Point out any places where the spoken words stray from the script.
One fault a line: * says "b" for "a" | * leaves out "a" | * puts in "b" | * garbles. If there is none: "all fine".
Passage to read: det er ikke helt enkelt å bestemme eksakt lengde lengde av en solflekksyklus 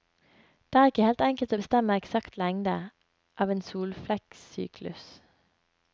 * leaves out "lengde"